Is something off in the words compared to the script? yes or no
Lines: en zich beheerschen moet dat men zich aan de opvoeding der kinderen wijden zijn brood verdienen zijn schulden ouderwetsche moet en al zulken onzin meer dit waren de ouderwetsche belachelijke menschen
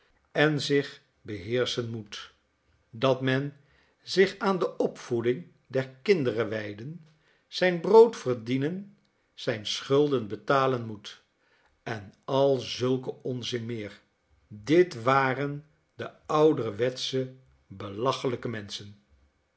yes